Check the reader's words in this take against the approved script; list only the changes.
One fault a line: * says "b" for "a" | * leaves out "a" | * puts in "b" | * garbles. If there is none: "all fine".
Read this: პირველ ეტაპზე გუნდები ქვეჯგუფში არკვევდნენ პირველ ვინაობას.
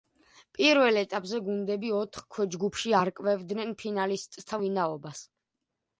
* puts in "ოთხ"
* says "ფინალისტთა" for "პირველ"